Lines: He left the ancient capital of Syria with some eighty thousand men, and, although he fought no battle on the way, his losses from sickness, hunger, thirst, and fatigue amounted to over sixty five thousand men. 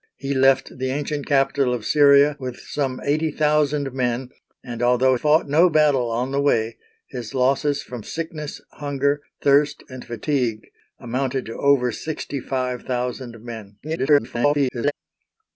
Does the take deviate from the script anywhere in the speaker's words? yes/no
yes